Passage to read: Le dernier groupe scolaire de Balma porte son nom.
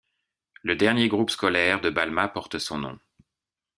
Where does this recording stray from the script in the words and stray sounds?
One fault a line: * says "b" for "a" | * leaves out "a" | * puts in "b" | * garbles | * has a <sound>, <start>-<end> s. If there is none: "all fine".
all fine